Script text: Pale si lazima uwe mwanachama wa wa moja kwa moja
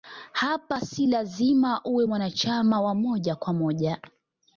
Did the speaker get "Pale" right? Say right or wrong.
wrong